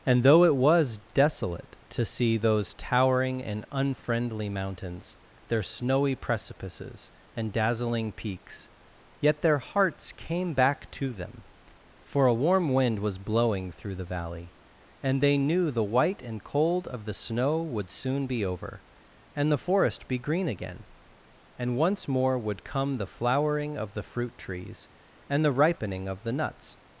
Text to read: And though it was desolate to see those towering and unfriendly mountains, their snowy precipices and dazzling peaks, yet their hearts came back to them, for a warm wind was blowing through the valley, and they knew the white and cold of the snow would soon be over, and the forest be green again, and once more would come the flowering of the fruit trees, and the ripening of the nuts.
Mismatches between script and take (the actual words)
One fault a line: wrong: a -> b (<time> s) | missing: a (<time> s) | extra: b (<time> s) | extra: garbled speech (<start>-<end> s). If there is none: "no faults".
no faults